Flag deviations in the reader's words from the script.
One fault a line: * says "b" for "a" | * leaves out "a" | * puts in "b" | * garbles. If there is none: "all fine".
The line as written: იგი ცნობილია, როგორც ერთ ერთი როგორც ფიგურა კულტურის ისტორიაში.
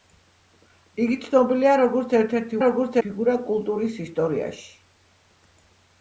all fine